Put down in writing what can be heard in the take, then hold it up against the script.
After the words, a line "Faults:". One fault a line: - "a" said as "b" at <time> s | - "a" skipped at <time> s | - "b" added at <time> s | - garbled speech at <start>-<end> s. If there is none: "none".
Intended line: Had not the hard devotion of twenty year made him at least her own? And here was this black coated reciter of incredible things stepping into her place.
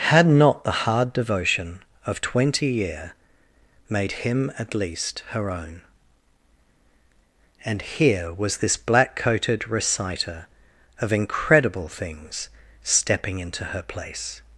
Had not the hard devotion of twenty year made him at least her own? And here was this black coated reciter of incredible things stepping into her place.
Faults:
none